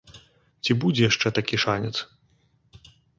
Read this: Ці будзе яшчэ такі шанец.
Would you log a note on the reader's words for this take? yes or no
no